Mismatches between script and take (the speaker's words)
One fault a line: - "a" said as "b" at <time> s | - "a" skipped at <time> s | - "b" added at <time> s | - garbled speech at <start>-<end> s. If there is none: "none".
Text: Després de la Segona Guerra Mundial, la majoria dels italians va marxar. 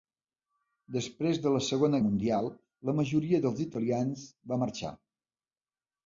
- "Guerra" skipped at 2.0 s